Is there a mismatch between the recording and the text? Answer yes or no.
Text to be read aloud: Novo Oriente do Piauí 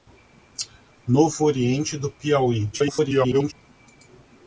yes